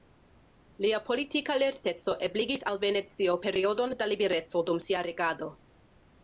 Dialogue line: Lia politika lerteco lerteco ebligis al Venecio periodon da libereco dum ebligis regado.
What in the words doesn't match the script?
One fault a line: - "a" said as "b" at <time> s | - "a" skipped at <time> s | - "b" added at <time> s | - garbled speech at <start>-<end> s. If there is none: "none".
- "lerteco" skipped at 2.1 s
- "ebligis" said as "sia" at 4.9 s